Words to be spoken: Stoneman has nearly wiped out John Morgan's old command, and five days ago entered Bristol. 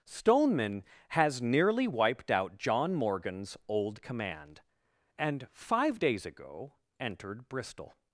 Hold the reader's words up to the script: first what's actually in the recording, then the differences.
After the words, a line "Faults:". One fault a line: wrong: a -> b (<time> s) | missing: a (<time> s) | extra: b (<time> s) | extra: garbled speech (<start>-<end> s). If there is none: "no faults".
Stoneman has nearly wiped out John Morgan's old command, and five days ago entered Bristol.
Faults:
no faults